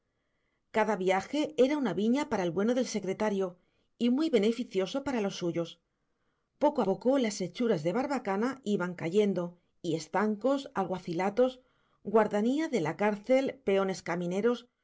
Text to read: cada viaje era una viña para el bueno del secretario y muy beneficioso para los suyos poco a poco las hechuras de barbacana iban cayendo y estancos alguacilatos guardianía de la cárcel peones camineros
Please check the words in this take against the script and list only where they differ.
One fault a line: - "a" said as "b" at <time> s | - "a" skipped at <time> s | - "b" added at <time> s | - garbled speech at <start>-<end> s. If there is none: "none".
- "a" skipped at 6.8 s